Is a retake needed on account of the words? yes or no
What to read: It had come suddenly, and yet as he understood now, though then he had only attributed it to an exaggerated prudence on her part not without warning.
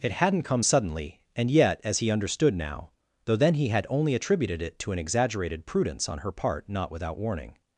yes